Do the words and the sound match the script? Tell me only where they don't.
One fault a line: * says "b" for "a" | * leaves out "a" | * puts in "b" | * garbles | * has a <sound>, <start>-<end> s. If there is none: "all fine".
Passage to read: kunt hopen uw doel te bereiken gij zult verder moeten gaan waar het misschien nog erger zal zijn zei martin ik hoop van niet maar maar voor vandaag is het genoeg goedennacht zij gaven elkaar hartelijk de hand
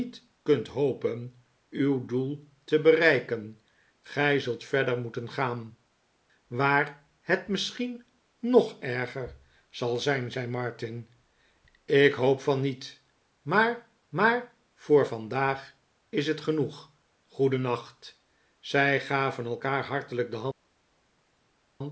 all fine